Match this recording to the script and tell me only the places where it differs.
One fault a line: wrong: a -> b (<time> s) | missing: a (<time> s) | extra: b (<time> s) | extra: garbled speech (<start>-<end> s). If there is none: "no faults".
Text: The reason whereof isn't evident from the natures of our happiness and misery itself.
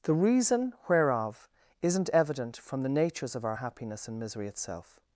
no faults